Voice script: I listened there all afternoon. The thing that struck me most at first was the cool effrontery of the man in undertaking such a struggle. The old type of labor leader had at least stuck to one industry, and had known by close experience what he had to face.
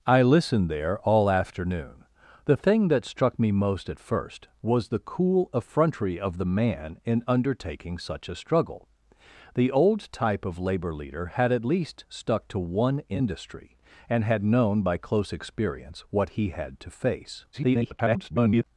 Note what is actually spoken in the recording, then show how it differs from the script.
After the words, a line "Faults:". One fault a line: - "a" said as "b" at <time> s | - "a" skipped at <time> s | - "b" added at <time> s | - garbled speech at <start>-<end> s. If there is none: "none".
I listened there all afternoon. The thing that struck me most at first was the cool effrontery of the man in undertaking such a struggle. The old type of labor leader had at least stuck to one industry, and had known by close experience what he had to face. [garbled]
Faults:
- garbled speech at 17.5-18.6 s